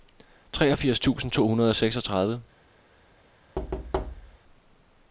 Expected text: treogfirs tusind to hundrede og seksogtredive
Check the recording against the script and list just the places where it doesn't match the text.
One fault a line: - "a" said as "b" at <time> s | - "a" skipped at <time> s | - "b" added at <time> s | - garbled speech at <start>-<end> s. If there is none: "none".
none